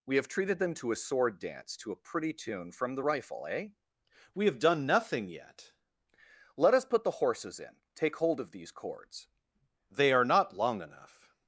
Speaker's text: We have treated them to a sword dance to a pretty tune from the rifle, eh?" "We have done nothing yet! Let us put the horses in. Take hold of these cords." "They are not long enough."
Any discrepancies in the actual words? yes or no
no